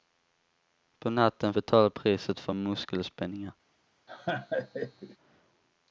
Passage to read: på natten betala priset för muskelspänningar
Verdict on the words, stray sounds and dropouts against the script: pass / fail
fail